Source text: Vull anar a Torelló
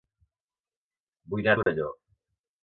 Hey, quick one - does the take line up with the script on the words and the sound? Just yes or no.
no